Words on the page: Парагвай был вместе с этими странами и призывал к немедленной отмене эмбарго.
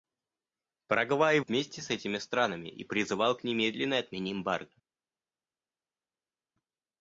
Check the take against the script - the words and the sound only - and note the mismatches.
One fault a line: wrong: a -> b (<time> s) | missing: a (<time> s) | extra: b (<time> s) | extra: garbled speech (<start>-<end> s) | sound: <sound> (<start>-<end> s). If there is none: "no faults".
missing: был (1.4 s)